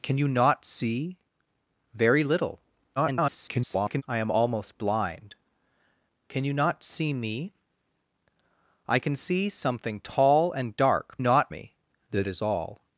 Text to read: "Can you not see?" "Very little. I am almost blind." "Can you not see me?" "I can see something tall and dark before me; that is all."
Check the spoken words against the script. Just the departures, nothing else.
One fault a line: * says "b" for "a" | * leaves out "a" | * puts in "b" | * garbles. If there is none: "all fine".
* garbles
* says "not" for "before"